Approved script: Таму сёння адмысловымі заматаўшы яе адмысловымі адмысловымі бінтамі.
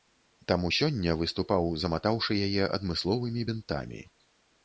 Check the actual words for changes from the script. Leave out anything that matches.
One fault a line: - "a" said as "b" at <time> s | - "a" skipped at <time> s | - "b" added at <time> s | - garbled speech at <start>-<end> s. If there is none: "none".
- "адмысловымі" said as "выступаў" at 1.2 s
- "адмысловымі" skipped at 3.5 s